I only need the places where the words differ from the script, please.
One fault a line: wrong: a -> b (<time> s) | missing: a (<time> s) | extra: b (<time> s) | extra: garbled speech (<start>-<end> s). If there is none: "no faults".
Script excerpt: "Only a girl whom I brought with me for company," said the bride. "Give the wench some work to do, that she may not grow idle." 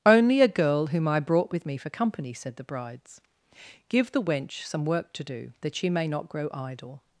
wrong: bride -> brides (2.6 s)